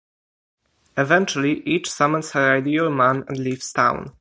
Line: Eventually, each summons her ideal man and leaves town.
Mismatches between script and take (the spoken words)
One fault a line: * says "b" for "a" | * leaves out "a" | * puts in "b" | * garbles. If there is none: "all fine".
all fine